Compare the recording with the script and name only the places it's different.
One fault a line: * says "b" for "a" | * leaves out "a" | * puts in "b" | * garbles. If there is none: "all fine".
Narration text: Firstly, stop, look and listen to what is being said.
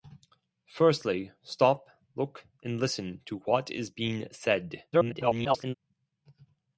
* garbles